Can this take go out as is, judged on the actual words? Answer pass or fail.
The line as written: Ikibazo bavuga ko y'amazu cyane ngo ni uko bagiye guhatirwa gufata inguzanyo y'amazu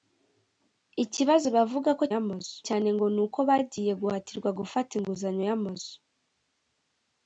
pass